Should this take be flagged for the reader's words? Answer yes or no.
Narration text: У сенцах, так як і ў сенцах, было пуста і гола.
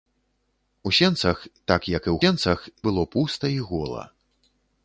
no